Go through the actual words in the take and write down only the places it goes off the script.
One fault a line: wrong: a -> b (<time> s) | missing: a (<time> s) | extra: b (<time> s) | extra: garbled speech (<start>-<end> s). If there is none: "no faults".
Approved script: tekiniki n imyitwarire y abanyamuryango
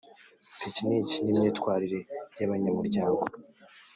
no faults